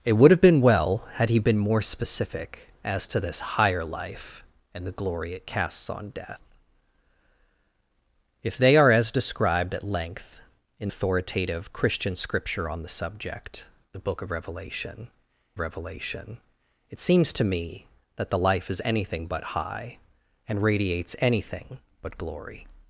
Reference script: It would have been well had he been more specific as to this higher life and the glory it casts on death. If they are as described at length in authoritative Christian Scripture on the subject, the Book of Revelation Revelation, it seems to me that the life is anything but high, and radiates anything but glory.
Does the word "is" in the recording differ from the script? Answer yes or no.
no